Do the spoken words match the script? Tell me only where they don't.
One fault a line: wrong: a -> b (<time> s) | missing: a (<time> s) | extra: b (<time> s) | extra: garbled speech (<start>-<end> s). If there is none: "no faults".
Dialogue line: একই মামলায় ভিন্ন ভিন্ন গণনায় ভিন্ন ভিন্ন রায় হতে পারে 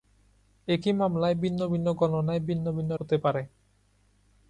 missing: রায় (2.9 s)